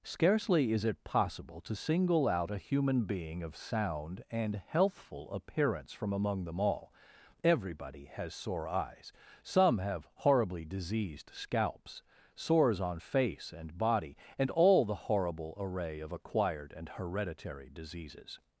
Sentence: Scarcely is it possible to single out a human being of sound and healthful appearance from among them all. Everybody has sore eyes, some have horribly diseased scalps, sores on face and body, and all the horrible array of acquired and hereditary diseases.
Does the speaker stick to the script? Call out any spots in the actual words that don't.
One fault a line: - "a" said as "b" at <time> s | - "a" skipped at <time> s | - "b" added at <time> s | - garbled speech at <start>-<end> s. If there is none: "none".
none